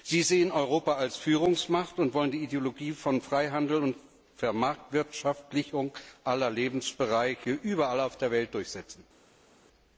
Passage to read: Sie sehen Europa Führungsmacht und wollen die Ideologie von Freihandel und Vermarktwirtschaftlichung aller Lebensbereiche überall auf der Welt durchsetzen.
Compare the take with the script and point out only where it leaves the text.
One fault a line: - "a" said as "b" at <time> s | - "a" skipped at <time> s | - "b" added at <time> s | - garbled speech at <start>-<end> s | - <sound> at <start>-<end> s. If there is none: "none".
- "als" added at 0.9 s